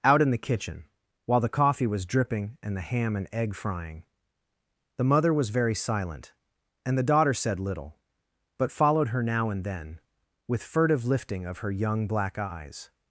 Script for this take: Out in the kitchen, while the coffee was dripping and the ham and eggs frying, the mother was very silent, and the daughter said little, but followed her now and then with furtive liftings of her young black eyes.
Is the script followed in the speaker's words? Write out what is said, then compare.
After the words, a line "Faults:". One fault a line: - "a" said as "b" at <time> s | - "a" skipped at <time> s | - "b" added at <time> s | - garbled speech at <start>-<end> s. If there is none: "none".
Out in the kitchen, while the coffee was dripping and the ham and egg frying, the mother was very silent, and the daughter said little, but followed her now and then with furtive lifting of her young black eyes.
Faults:
- "eggs" said as "egg" at 3.3 s
- "liftings" said as "lifting" at 11.1 s